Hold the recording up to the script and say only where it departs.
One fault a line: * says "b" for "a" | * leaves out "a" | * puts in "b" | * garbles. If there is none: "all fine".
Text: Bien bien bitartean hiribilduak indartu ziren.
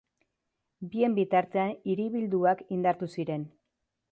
* leaves out "bien"